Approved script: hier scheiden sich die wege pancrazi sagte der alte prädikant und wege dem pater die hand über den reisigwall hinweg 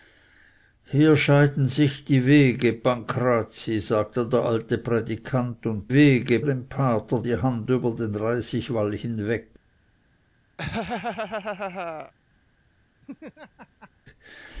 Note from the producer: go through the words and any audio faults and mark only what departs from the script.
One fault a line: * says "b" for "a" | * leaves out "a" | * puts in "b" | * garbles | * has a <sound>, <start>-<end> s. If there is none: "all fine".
* has a laugh, 10.6-12.1 s
* has a laugh, 13.0-13.9 s